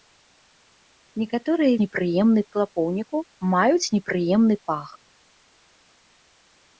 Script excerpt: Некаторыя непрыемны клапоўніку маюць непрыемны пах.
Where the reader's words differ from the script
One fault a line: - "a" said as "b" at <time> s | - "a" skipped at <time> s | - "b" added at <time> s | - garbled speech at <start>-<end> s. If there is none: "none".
none